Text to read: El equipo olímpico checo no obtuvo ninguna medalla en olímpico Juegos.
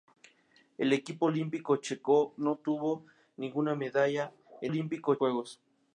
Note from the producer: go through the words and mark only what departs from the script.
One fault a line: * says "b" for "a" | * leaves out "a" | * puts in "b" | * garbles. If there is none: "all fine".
all fine